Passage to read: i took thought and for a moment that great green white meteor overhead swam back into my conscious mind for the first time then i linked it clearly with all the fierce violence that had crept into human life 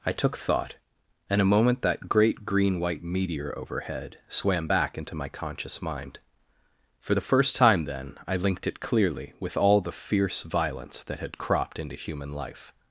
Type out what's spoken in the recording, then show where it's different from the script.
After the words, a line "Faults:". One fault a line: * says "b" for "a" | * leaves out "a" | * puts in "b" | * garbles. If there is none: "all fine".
i took thought and a moment that great green white meteor overhead swam back into my conscious mind for the first time then i linked it clearly with all the fierce violence that had cropped into human life
Faults:
* leaves out "for"
* says "cropped" for "crept"